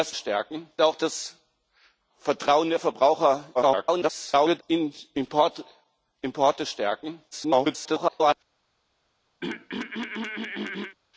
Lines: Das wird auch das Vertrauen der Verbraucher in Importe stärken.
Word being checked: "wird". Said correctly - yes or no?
no